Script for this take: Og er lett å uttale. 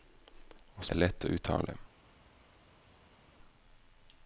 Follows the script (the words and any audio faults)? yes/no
yes